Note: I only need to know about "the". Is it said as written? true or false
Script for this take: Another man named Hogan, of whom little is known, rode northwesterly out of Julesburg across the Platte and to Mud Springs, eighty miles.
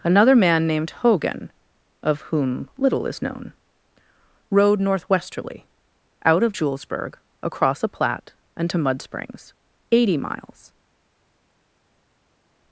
false